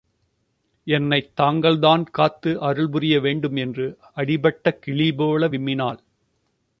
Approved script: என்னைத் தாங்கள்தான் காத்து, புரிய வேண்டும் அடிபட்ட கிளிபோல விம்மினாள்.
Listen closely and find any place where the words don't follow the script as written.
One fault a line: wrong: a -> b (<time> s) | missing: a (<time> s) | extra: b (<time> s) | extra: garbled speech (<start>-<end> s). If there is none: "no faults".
extra: அருள் (2.6 s)
extra: என்று (3.5 s)